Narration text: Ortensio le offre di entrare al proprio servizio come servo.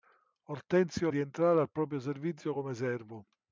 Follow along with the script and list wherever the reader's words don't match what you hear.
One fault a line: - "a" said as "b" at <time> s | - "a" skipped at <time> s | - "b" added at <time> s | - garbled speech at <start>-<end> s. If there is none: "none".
- "le offre" skipped at 1.1 s